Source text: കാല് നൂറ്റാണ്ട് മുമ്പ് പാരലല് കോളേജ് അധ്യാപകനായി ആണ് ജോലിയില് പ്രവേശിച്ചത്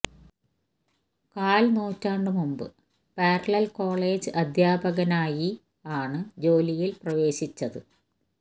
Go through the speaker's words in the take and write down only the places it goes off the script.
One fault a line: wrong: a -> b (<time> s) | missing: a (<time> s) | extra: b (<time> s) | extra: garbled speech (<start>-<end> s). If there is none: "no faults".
no faults